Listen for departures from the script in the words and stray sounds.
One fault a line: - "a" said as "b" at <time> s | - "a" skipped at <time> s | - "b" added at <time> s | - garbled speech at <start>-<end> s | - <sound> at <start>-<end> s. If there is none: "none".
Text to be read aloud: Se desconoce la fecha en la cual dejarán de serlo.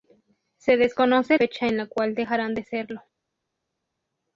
- "la" skipped at 1.4 s